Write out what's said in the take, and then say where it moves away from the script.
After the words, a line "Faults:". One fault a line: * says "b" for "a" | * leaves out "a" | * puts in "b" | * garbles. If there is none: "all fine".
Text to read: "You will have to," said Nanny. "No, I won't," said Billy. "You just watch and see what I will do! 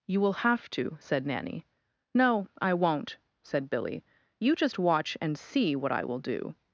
"You will have to," said Nanny. "No, I won't," said Billy. "You just watch and see what I will do!
Faults:
all fine